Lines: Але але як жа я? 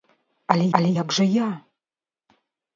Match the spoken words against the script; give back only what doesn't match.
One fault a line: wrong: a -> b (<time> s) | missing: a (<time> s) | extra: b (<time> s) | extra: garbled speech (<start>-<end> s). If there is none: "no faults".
no faults